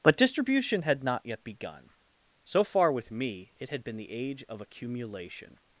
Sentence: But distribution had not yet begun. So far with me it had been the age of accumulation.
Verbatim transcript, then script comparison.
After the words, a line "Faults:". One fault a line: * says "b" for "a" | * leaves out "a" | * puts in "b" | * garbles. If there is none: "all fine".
But distribution had not yet begun. So far with me it had been the age of accumulation.
Faults:
all fine